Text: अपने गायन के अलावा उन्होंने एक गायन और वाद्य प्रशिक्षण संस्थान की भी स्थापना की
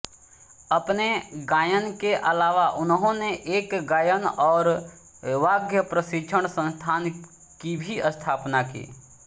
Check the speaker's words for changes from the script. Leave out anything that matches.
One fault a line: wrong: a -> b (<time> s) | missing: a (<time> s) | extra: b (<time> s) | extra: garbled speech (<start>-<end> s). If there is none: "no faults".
no faults